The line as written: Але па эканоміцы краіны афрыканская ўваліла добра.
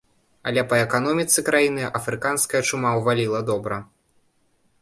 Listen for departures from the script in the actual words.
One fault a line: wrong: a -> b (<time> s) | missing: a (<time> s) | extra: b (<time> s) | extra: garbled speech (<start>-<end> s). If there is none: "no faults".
extra: чума (2.7 s)